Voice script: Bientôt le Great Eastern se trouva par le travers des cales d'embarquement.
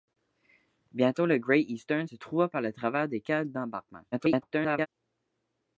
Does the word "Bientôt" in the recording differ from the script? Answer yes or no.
no